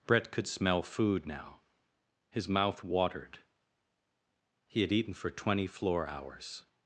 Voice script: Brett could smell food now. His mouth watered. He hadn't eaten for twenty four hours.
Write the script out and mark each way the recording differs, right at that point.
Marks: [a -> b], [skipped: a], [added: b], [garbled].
Brett could smell food now. His mouth watered. He [hadn't -> had] eaten for twenty [four -> floor] hours.